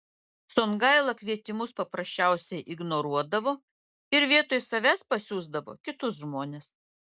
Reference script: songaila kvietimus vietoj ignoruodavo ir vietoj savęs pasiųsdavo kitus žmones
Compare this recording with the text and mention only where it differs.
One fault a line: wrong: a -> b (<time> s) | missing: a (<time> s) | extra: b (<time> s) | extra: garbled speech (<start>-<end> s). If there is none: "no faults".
wrong: vietoj -> paprasčiausiai (1.8 s)